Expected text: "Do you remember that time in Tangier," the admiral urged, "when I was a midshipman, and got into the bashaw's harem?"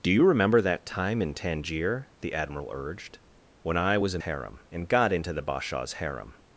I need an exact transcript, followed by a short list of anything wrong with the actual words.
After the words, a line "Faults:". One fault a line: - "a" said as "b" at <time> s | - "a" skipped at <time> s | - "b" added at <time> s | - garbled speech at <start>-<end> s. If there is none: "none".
"Do you remember that time in Tangier," the admiral urged, "when I was a harem, and got into the bashaw's harem?"
Faults:
- "midshipman" said as "harem" at 4.2 s